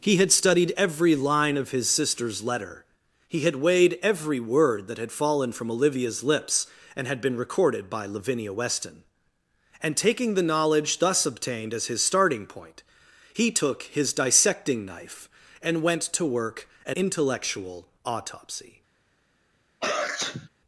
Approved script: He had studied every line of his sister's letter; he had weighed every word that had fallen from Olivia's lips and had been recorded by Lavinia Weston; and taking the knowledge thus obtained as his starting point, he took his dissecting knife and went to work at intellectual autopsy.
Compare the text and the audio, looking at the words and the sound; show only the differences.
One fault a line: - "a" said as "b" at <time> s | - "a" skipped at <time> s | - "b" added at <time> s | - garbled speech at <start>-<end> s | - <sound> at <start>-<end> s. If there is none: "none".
- sneeze at 19.8-20.5 s